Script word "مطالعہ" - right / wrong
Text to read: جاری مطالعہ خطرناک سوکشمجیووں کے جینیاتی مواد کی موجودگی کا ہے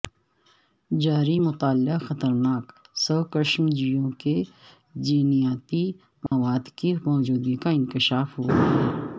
right